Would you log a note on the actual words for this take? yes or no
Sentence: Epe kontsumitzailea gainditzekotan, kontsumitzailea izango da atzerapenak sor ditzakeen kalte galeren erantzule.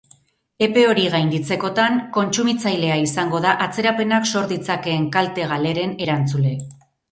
yes